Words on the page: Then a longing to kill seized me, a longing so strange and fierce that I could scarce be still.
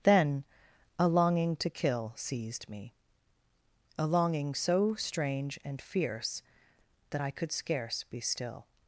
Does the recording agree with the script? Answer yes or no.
yes